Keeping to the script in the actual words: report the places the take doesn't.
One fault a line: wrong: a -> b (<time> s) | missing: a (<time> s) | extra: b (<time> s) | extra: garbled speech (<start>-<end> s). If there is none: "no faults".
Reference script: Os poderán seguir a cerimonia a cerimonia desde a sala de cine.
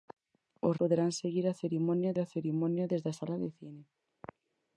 no faults